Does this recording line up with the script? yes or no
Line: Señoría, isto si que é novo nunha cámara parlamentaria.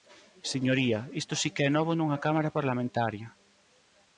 yes